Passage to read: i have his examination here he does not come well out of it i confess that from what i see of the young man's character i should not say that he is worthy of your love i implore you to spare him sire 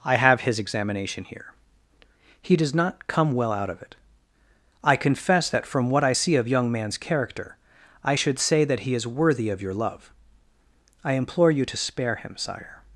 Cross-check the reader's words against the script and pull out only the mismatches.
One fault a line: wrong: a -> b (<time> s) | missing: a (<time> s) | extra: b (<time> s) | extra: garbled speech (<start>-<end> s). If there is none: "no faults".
missing: the (6.5 s)
missing: not (8.4 s)